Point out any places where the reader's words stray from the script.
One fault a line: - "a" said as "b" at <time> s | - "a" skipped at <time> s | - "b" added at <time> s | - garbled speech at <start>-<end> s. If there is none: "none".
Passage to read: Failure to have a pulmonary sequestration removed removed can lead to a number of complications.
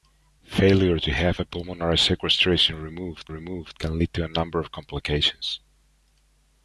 none